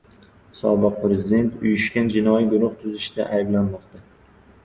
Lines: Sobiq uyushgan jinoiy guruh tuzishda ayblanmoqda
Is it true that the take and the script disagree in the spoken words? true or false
true